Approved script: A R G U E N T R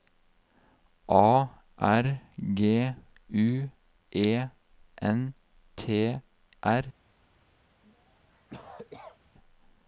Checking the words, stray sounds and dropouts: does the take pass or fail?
fail